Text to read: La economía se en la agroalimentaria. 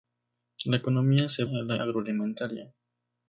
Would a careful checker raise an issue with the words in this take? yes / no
no